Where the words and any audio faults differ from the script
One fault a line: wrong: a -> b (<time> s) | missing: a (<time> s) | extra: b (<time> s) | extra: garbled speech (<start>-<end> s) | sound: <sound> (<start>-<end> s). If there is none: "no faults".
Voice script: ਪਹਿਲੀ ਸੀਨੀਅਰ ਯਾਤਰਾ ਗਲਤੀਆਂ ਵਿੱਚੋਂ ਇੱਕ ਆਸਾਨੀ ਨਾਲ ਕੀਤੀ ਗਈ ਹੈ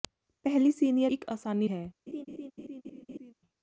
missing: ਯਾਤਰਾ ਗਲਤੀਆਂ ਵਿੱਚੋਂ (1.1 s)
missing: ਨਾਲ ਕੀਤੀ ਗਈ (1.7 s)
sound: laugh (2.1-3.3 s)